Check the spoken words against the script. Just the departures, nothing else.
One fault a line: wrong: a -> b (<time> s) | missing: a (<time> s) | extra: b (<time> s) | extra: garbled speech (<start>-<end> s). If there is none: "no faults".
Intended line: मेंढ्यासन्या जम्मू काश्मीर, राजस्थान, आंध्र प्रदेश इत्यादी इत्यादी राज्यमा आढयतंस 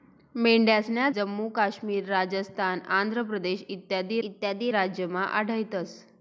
no faults